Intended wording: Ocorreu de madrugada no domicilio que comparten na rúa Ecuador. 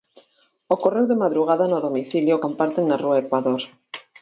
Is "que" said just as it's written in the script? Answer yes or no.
no